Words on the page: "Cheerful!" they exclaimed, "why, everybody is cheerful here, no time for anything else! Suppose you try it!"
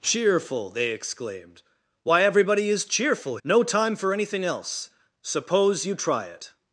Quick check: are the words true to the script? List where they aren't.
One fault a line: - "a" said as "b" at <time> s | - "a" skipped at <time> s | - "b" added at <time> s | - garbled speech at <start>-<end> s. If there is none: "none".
- "here" skipped at 3.4 s